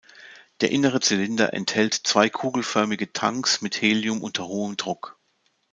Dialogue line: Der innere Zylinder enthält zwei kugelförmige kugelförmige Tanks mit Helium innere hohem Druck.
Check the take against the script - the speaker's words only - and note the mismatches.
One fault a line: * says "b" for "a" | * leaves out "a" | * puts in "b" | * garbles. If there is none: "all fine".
* leaves out "kugelförmige"
* says "unter" for "innere"